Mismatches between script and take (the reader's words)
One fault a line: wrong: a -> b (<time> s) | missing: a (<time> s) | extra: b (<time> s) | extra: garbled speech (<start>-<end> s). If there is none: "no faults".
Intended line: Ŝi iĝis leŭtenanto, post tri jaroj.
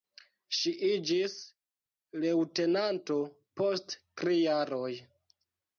no faults